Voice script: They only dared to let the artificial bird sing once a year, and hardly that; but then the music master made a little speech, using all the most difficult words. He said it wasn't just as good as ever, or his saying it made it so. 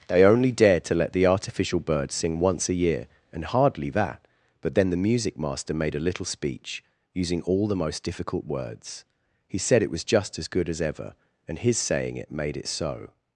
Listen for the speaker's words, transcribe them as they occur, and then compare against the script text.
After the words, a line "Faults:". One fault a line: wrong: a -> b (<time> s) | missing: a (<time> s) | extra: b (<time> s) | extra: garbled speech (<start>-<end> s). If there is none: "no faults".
They only dared to let the artificial bird sing once a year, and hardly that; but then the music master made a little speech, using all the most difficult words. He said it was just as good as ever, and his saying it made it so.
Faults:
wrong: wasn't -> was (9.9 s)
wrong: or -> and (11.5 s)